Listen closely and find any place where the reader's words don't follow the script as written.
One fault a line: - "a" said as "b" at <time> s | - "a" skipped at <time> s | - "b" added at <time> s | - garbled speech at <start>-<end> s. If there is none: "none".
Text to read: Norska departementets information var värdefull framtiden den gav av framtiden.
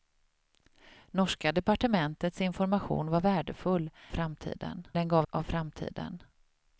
none